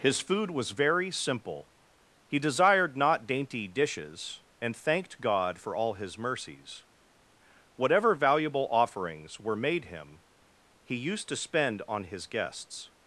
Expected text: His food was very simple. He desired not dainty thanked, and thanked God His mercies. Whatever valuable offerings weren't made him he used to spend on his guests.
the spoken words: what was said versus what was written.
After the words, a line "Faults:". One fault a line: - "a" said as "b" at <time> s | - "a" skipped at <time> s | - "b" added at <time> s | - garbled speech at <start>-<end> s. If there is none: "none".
His food was very simple. He desired not dainty dishes, and thanked God for all His mercies. Whatever valuable offerings were made him he used to spend on his guests.
Faults:
- "thanked" said as "dishes" at 3.7 s
- "for all" added at 5.6 s
- "weren't" said as "were" at 9.4 s